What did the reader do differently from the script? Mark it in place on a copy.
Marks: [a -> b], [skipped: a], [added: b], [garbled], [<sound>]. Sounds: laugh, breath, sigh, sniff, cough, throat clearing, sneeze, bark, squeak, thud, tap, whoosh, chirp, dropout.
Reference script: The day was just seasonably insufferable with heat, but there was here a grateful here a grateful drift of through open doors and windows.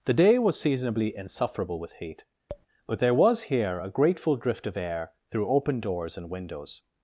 The day was [skipped: just] seasonably insufferable with heat, [tap] but there was here a grateful [skipped: here a grateful] drift of [added: air] through open doors and windows.